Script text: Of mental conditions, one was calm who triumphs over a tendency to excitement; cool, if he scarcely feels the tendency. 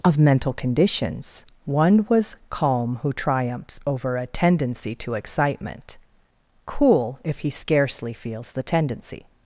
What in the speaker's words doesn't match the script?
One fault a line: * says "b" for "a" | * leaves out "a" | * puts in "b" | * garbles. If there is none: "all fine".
all fine